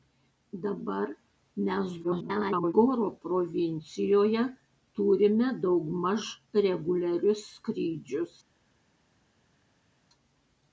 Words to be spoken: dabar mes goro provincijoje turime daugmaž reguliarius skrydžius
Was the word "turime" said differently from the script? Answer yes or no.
no